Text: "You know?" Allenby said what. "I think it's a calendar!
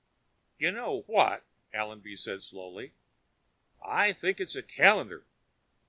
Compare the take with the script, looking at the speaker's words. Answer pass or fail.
fail